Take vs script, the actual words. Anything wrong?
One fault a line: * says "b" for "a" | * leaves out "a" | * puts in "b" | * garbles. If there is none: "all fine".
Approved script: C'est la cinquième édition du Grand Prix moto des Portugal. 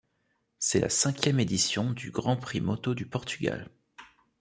* says "du" for "des"